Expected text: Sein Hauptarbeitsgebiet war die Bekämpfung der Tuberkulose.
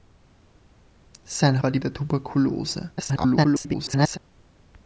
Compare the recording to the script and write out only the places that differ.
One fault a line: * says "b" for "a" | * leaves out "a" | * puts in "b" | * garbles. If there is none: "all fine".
* leaves out "Hauptarbeitsgebiet"
* leaves out "Bekämpfung"
* garbles